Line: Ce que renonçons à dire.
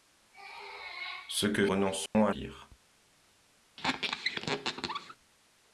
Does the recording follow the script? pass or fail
pass